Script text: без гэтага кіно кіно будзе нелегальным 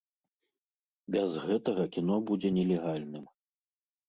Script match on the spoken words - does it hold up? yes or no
no